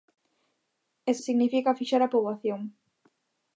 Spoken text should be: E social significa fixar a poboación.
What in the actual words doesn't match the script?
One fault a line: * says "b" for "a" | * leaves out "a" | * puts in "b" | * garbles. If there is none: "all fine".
* leaves out "social"